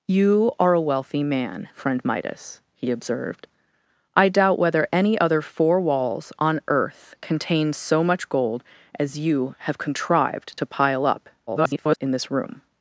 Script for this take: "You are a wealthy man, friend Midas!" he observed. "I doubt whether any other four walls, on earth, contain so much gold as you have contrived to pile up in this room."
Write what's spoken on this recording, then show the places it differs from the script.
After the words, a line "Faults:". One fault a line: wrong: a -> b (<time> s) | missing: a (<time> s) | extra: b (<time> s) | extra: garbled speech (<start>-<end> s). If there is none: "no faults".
"You are a wealthy man, friend Midas!" he observed. "I doubt whether any other four walls, on earth, contain so much gold as you have contrived to pile up [garbled] in this room."
Faults:
extra: garbled speech (11.5-12.0 s)